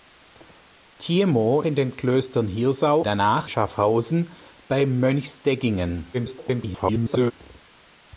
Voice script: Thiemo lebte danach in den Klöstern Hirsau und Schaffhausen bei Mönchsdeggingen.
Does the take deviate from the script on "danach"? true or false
true